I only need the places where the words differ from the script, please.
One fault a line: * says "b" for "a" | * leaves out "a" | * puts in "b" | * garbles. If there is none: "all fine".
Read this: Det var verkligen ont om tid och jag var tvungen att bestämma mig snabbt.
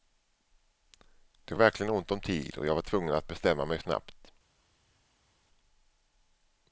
* leaves out "var"